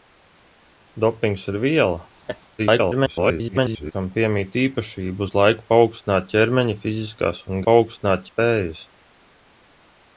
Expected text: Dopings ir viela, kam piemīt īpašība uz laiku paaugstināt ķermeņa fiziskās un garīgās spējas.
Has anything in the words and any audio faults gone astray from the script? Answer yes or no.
yes